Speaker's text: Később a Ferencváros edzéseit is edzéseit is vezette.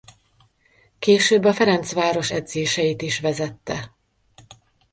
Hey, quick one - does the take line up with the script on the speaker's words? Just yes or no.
no